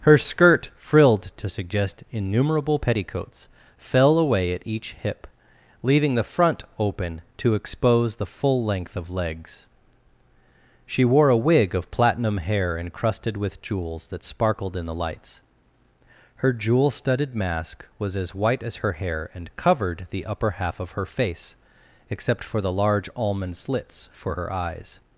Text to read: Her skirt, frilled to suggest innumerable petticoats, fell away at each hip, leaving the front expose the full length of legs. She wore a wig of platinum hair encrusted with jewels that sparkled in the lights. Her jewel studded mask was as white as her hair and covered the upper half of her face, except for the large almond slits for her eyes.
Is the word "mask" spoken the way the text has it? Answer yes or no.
yes